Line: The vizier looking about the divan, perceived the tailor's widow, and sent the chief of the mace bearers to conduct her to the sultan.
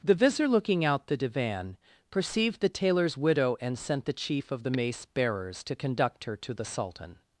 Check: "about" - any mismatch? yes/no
yes